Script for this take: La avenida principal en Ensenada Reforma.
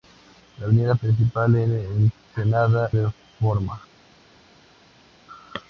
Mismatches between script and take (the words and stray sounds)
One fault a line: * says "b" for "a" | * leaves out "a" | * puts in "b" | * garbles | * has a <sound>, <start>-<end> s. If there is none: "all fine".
all fine